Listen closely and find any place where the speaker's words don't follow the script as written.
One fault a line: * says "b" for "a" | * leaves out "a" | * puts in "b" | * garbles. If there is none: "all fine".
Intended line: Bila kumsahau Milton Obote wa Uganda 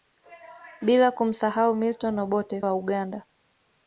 all fine